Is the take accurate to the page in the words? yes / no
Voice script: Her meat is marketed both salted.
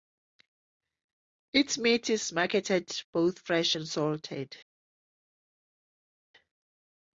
no